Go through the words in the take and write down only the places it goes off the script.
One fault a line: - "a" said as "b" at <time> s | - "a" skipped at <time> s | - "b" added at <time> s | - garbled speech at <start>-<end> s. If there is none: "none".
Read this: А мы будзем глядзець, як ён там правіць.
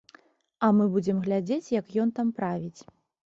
none